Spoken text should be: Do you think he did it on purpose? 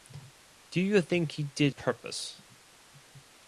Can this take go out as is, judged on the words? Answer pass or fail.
fail